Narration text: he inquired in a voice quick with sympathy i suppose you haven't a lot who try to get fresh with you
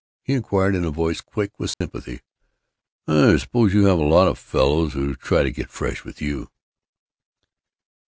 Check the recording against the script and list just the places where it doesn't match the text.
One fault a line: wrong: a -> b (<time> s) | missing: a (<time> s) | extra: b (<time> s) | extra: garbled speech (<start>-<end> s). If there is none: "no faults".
wrong: haven't -> have (3.9 s)
extra: of fellows (4.3 s)